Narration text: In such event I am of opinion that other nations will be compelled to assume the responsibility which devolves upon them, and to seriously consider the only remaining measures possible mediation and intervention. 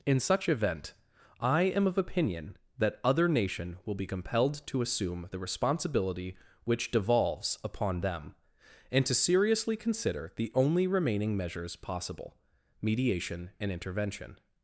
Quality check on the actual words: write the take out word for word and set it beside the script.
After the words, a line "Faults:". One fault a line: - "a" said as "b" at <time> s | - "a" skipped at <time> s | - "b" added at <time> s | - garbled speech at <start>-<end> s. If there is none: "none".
In such event I am of opinion that other nation will be compelled to assume the responsibility which devolves upon them, and to seriously consider the only remaining measures possible mediation and intervention.
Faults:
- "nations" said as "nation" at 3.3 s